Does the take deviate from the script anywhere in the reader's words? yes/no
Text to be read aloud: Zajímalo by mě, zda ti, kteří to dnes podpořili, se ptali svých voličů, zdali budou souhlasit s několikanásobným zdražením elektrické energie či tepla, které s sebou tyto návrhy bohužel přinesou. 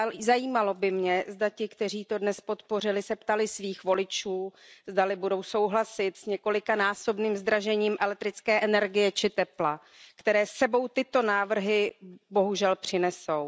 no